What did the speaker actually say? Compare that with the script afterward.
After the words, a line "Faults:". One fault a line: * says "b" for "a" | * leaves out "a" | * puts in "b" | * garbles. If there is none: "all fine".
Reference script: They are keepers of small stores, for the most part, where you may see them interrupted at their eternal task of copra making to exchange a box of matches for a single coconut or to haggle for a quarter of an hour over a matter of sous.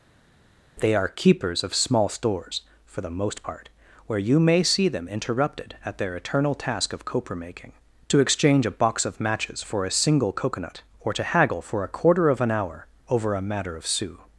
They are keepers of small stores, for the most part, where you may see them interrupted at their eternal task of copra making to exchange a box of matches for a single coconut or to haggle for a quarter of an hour over a matter of sous.
Faults:
all fine